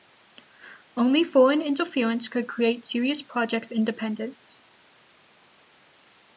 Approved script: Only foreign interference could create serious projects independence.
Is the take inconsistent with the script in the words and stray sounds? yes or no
no